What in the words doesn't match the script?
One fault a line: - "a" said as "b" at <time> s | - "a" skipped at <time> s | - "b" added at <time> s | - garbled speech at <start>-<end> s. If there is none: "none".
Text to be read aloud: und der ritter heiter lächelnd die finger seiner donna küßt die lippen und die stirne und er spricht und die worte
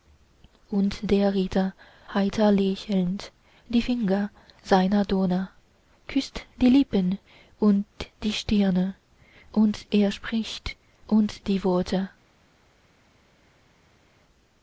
none